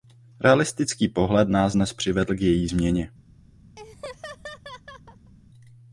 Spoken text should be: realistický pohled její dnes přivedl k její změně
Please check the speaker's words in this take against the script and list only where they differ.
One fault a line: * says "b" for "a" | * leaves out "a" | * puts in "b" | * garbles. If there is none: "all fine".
* says "nás" for "její"